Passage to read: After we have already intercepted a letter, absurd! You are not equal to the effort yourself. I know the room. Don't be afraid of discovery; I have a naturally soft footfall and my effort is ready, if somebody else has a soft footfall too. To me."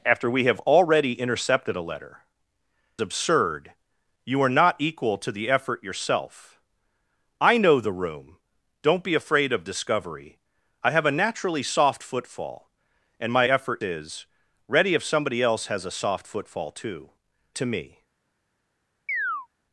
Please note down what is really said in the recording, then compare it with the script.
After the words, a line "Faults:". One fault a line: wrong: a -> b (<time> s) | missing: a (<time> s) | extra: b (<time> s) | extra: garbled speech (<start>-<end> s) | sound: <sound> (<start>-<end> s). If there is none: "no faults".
After we have already intercepted a letter, absurd! You are not equal to the effort yourself. I know the room. Don't be afraid of discovery; I have a naturally soft footfall and my effort is ready, if somebody else has a soft footfall too. To me."
Faults:
sound: chirp (19.1-19.5 s)